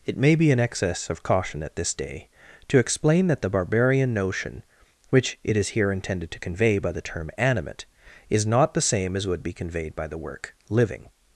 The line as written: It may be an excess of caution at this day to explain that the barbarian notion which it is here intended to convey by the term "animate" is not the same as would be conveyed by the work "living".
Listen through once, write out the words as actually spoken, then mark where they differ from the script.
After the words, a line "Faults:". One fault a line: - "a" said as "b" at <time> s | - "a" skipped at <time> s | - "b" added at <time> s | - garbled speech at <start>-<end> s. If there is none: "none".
It may be an excess of caution at this day to explain that the barbarian notion which it is here intended to convey by the term "animate" is not the same as would be conveyed by the work "living".
Faults:
none